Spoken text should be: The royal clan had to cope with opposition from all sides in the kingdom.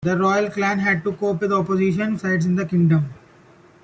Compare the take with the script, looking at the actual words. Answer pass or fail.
fail